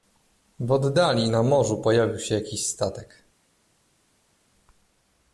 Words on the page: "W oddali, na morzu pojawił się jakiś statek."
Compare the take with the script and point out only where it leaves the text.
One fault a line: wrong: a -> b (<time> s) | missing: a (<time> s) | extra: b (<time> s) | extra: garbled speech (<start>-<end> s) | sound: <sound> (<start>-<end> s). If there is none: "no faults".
no faults